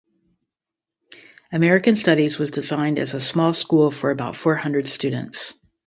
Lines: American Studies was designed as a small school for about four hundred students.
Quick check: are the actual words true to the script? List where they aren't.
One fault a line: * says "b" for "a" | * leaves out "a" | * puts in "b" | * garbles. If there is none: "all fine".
all fine